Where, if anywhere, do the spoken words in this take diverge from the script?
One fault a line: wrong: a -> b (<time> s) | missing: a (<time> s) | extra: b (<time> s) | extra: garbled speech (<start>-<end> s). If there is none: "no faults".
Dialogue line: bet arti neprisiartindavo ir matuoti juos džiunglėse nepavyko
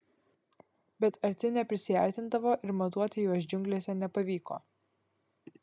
no faults